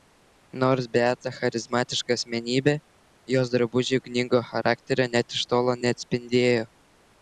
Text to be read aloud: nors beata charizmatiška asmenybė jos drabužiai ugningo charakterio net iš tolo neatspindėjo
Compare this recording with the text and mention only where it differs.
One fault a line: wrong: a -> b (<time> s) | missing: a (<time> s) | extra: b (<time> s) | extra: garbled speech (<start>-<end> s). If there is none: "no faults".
no faults